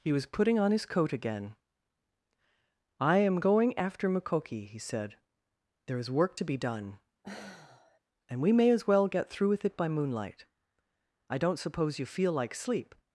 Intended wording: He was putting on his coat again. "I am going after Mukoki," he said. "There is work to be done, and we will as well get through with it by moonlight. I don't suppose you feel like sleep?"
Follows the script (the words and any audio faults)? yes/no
no